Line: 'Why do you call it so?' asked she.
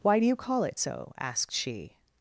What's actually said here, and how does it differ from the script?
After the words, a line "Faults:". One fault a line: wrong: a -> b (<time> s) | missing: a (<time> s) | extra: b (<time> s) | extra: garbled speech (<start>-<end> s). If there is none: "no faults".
'Why do you call it so?' asked she.
Faults:
no faults